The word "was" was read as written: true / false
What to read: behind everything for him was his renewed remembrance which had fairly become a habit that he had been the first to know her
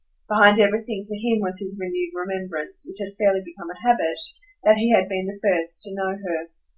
true